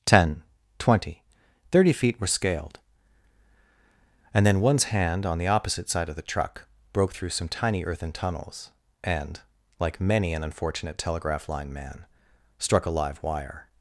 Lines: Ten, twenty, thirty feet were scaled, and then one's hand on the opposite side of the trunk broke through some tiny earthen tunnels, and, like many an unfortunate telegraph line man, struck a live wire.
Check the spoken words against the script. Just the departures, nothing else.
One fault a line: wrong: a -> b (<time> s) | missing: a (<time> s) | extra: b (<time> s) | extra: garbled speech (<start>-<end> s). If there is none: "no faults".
wrong: trunk -> truck (6.2 s)